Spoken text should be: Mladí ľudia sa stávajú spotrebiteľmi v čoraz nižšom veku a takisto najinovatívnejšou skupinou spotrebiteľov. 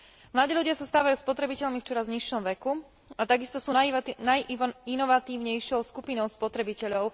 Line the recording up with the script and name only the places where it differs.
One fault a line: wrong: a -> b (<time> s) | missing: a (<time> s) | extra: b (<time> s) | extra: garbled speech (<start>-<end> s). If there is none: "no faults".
extra: sú (3.6 s)